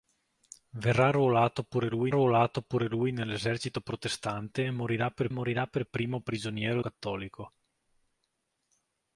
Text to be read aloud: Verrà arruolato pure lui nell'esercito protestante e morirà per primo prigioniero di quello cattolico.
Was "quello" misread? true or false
true